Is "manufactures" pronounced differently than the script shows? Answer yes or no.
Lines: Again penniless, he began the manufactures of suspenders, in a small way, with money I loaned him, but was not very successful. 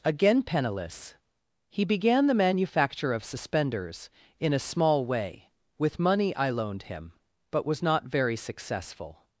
yes